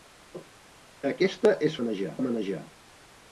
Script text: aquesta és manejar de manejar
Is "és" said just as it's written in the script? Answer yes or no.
yes